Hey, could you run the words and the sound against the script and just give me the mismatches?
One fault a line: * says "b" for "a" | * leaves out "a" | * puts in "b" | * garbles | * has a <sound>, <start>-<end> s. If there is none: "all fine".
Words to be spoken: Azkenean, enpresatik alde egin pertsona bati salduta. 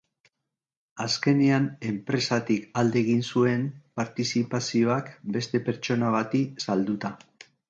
* puts in "zuen partizipazioak beste"